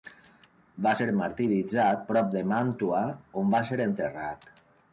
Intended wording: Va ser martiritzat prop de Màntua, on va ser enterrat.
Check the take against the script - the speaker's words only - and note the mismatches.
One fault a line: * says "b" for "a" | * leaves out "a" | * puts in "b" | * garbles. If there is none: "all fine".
all fine